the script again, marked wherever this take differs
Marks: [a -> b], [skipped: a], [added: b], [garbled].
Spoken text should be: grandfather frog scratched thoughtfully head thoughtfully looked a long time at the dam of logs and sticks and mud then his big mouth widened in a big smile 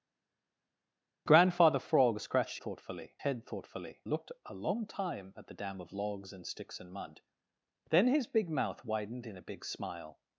grandfather frog scratched thoughtfully head thoughtfully looked a long time at the dam of logs and sticks and mud then his big mouth widened in a big smile